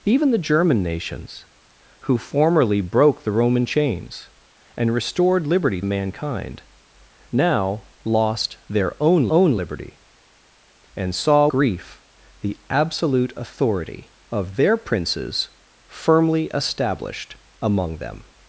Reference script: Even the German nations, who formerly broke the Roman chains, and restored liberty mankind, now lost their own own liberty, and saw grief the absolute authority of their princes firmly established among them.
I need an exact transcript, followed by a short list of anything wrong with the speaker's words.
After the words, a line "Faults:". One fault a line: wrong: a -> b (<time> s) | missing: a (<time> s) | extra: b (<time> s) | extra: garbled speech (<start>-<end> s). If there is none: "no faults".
Even the German nations, who formerly broke the Roman chains, and restored liberty mankind, now lost their own own liberty, and saw grief the absolute authority of their princes firmly established among them.
Faults:
no faults